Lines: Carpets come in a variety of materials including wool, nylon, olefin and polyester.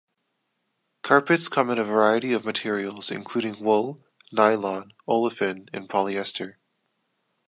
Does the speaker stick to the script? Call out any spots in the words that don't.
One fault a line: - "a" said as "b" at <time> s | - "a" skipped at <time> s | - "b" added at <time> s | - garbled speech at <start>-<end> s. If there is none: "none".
none